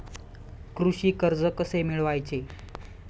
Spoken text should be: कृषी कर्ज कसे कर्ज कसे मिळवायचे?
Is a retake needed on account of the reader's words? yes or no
yes